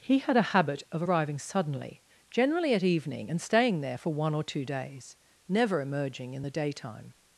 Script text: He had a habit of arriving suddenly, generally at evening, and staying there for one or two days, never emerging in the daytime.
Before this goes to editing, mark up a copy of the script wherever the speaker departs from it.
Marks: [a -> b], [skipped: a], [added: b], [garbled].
He had a habit of arriving suddenly, generally at evening, and staying there for one or two days, never emerging in the daytime.